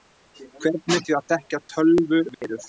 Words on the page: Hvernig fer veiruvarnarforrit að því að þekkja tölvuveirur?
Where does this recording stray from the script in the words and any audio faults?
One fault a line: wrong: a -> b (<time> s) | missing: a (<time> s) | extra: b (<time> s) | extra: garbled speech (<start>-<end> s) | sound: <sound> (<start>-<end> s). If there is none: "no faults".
missing: fer veiruvarnarforrit að (1.0 s)
sound: dropout (2.3-2.4 s)